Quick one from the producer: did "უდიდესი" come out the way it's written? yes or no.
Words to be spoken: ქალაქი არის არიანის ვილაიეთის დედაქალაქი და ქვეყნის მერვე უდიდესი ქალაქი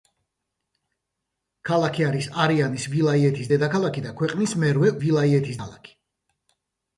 no